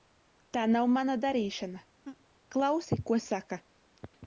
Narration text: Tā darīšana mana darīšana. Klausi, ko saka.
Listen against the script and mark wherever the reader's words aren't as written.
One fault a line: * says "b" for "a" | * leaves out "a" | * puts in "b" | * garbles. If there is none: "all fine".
* says "nav" for "darīšana"